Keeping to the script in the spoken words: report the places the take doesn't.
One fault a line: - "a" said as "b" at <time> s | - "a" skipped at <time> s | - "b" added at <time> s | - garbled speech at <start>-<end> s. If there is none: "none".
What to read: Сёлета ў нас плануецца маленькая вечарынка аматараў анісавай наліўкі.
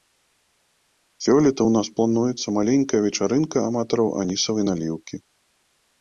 none